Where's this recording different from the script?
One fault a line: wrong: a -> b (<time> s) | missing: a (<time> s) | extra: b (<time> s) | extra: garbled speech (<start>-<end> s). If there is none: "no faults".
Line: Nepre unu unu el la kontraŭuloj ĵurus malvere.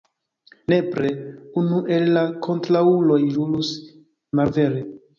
missing: unu (1.8 s)